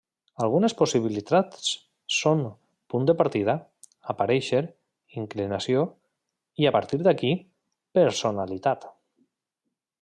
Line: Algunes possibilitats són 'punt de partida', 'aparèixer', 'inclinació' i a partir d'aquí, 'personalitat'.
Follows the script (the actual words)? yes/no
yes